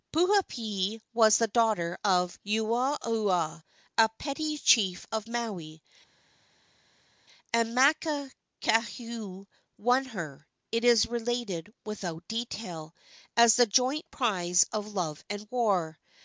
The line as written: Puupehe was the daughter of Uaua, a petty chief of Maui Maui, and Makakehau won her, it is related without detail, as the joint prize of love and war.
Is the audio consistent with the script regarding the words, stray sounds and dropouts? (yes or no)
no